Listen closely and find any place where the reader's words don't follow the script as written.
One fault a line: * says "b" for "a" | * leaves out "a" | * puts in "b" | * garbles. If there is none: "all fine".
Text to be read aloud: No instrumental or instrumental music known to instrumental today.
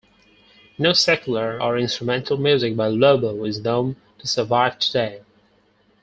* says "secular" for "instrumental"
* puts in "by Lobo is"
* says "survive" for "instrumental"